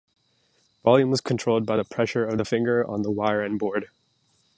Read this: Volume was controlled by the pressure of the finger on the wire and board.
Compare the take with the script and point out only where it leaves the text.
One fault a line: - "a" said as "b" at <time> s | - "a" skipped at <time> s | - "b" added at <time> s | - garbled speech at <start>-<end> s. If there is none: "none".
none